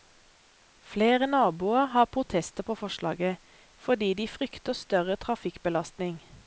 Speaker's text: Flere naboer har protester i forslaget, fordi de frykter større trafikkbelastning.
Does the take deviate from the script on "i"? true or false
true